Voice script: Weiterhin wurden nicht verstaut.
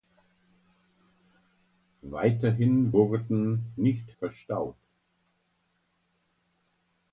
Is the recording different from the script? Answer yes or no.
no